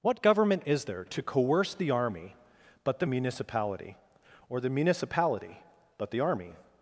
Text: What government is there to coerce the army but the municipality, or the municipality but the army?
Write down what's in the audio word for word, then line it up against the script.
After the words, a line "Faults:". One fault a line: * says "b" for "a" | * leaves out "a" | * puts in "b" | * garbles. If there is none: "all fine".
What government is there to coerce the army but the municipality, or the municipality but the army?
Faults:
all fine